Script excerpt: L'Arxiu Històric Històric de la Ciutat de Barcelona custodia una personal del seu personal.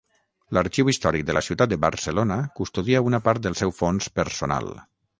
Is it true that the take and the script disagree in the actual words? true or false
true